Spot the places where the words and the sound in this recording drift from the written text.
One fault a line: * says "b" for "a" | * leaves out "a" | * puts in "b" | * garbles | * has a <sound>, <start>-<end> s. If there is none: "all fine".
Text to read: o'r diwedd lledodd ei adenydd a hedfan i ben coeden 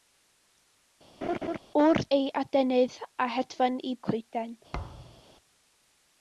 * has a laugh, 1.2-1.6 s
* leaves out "diwedd lledodd"
* leaves out "ben"
* has a thud, 4.7-5.2 s